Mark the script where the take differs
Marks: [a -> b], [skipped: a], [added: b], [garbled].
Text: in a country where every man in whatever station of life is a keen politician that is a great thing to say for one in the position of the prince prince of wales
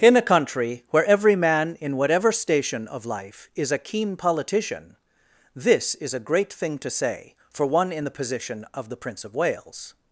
in a country where every man in whatever station of life is a keen politician [that -> this] is a great thing to say for one in the position of the prince [skipped: prince] of wales